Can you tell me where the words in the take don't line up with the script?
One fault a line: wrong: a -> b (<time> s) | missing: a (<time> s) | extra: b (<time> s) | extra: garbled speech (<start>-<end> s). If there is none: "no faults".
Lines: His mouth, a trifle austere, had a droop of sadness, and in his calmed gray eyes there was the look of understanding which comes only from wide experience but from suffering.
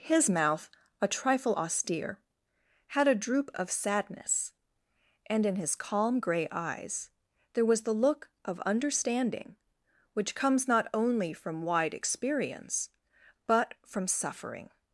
wrong: calmed -> calm (5.8 s)
extra: not (10.7 s)